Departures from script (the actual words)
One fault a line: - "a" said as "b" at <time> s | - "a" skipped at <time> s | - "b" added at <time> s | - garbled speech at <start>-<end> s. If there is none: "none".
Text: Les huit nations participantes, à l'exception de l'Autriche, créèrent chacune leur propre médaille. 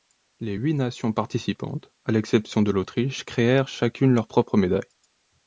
none